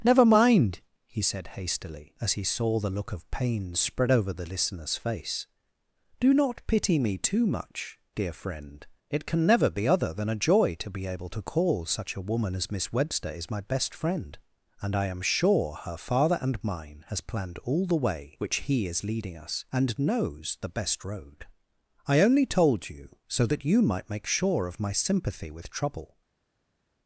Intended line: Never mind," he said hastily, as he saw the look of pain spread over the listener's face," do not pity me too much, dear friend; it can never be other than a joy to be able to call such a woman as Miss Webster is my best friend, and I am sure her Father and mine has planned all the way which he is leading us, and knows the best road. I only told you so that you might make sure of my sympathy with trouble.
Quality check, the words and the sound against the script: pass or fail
pass